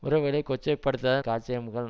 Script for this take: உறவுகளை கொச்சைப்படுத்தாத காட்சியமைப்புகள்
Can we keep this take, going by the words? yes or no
yes